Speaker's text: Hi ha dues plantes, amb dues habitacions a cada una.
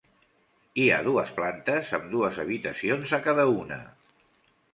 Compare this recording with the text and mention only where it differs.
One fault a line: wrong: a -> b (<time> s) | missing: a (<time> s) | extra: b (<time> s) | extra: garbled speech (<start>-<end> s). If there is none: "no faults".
no faults